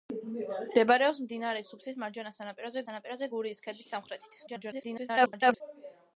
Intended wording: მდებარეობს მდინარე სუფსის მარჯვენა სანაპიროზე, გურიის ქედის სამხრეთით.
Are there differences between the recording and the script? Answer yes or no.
yes